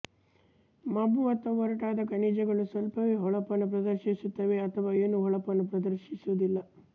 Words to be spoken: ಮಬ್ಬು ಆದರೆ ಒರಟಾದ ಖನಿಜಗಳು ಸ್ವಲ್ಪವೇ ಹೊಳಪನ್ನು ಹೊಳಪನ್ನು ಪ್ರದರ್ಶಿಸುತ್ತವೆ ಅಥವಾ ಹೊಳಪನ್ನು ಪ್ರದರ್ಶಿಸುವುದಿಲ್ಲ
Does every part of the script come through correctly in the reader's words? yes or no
no